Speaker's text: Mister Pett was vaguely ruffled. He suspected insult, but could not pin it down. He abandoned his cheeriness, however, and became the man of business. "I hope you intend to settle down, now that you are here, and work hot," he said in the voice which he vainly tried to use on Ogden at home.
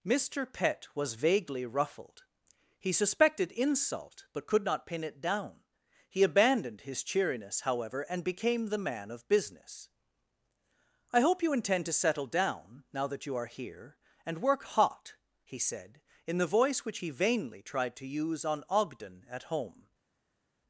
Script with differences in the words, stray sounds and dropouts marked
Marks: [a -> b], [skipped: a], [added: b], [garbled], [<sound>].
Mister Pett was vaguely ruffled. He suspected insult, but could not pin it down. He abandoned his cheeriness, however, and became the man of business. "I hope you intend to settle down, now that you are here, and work hot," he said in the voice which he vainly tried to use on Ogden at home.